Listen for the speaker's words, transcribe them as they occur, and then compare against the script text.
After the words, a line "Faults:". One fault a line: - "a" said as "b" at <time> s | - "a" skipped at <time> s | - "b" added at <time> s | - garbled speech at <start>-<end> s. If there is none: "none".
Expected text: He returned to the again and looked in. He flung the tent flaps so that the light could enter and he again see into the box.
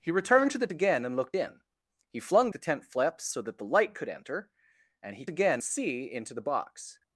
He returned to the again and looked in. He flung the tent flaps so that the light could enter and he again see into the box.
Faults:
none